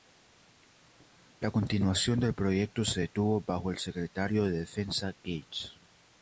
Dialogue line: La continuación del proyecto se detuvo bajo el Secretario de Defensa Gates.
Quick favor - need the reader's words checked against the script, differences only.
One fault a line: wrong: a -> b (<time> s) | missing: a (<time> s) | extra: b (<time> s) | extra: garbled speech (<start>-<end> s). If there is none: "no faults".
no faults